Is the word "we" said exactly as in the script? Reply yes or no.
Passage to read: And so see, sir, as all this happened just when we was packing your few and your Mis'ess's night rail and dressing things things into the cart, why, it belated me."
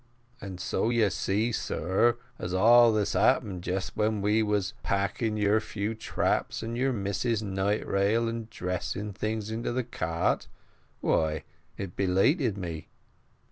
yes